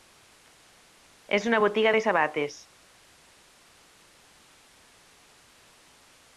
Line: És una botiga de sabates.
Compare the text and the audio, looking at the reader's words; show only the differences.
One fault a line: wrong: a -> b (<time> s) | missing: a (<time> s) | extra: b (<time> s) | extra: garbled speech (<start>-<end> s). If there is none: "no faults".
no faults